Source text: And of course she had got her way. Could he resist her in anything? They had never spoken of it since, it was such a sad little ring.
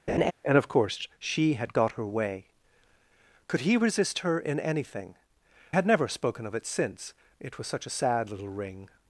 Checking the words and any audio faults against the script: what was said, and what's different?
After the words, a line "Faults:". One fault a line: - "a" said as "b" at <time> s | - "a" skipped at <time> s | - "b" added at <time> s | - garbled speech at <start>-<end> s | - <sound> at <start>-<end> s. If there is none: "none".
And of course she had got her way. Could he resist her in anything? Had never spoken of it since, it was such a sad little ring.
Faults:
- laugh at 0.1-0.3 s
- "They" skipped at 5.1 s